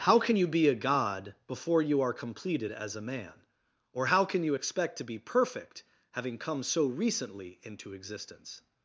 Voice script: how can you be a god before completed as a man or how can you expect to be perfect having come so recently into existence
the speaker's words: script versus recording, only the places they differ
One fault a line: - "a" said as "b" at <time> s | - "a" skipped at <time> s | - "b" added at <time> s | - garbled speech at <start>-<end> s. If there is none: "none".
- "you are" added at 1.8 s